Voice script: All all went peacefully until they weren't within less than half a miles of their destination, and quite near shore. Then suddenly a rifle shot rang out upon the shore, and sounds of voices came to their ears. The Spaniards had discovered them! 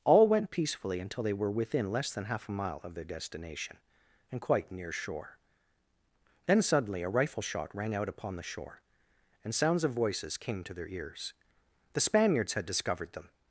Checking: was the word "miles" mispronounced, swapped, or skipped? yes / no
yes